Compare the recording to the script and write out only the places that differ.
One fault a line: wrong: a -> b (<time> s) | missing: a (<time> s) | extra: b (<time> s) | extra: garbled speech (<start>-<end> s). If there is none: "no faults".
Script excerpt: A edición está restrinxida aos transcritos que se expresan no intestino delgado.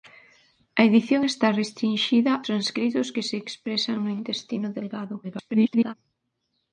missing: aos (2.3 s)
extra: garbled speech (5.2-5.9 s)